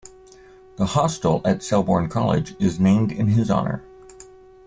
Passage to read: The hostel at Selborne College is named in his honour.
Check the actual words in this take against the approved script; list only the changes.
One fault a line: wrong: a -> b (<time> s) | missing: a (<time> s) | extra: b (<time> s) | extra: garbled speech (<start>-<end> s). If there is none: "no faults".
no faults